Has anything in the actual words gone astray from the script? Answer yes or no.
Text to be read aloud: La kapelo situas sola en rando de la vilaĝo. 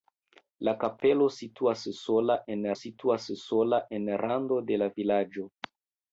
yes